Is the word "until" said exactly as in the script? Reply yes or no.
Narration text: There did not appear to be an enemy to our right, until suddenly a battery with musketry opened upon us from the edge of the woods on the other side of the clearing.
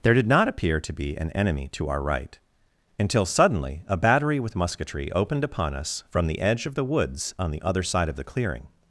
yes